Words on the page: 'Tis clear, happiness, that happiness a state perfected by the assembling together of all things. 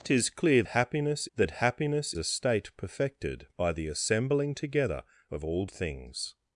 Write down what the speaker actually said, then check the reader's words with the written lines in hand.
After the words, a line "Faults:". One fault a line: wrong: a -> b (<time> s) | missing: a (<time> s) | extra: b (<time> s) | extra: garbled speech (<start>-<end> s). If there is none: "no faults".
'Tis clear, happiness, that happiness a state perfected by the assembling together of all things.
Faults:
no faults